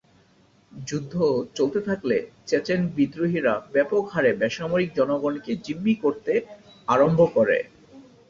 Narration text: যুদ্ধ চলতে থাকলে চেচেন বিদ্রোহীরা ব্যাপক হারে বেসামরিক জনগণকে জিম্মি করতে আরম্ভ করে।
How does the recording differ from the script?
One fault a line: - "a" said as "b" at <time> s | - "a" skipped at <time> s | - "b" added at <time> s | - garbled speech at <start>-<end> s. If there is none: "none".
none